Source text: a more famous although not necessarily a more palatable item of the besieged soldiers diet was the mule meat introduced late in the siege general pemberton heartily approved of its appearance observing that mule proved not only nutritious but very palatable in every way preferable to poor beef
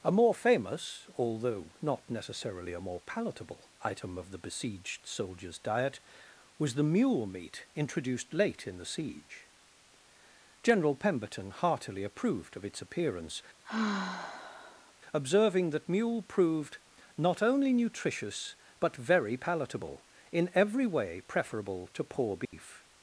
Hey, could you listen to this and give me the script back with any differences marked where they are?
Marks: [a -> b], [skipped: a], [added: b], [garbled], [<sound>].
a more famous although not necessarily a more palatable item of the besieged soldiers diet was the mule meat introduced late in the siege general pemberton heartily approved of its appearance [sigh] observing that mule proved not only nutritious but very palatable in every way preferable to poor beef [dropout]